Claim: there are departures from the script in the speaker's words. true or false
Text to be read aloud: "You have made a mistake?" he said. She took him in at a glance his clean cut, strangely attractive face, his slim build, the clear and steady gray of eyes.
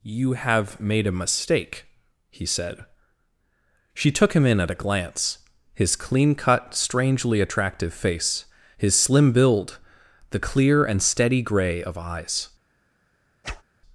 false